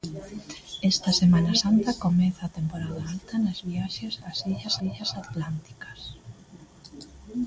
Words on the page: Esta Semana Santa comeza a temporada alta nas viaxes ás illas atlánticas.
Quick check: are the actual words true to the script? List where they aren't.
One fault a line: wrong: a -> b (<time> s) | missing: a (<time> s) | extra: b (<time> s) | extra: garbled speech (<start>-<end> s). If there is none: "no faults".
extra: illas (4.9 s)